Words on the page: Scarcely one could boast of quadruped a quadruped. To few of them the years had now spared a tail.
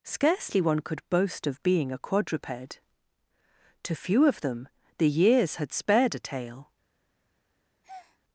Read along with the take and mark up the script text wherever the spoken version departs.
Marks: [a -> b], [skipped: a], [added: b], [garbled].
Scarcely one could boast of [quadruped -> being] a quadruped. To few of them the years had [skipped: now] spared a tail.